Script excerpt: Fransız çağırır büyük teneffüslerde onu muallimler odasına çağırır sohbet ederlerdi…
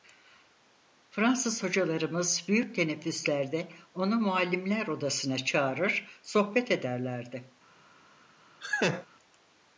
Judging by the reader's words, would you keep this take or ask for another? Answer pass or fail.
fail